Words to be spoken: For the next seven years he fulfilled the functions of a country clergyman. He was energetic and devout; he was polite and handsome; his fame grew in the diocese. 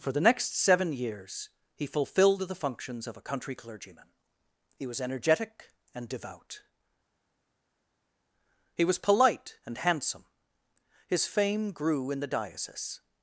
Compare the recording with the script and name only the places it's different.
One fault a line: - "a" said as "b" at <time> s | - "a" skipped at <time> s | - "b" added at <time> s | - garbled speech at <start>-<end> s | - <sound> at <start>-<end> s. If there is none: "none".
none